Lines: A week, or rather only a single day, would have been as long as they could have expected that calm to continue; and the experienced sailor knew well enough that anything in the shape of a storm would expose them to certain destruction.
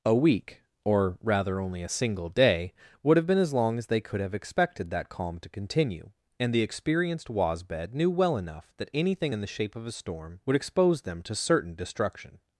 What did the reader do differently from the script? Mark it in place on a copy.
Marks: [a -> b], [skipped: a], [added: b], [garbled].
A week, or rather only a single day, would have been as long as they could have expected that calm to continue; and the experienced [sailor -> wasbed] knew well enough that anything in the shape of a storm would expose them to certain destruction.